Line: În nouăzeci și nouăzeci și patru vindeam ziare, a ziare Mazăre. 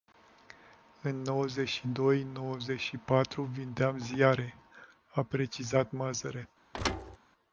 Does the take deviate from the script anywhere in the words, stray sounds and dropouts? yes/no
yes